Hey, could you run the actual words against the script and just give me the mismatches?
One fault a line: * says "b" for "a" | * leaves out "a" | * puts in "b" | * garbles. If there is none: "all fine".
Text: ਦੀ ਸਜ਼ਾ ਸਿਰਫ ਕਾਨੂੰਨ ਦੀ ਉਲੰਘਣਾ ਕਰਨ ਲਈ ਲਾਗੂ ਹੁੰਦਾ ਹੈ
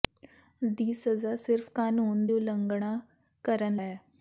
* leaves out "ਦੀ"
* leaves out "ਲਈ ਲਾਗੂ ਹੁੰਦਾ"